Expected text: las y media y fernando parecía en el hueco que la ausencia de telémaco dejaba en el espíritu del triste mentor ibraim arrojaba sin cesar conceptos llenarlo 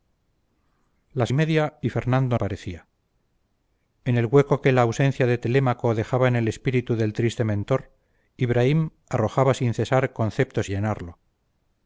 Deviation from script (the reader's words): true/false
false